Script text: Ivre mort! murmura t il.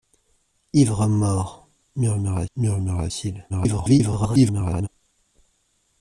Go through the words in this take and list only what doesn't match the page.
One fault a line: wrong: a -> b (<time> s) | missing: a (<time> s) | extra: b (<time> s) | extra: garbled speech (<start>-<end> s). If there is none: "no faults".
extra: murmura (2.6 s)
extra: garbled speech (3.5-4.9 s)